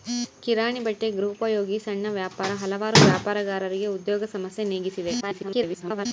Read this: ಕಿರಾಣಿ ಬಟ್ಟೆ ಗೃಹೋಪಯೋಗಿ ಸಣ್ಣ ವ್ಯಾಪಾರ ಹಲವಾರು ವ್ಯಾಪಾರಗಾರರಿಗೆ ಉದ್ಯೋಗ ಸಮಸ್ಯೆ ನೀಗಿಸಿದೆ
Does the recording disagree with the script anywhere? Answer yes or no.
yes